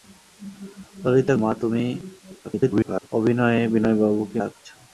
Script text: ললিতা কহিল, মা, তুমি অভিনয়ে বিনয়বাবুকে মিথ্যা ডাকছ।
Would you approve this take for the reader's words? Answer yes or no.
no